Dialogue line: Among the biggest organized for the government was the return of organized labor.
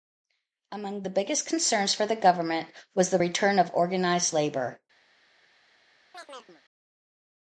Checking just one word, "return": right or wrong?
right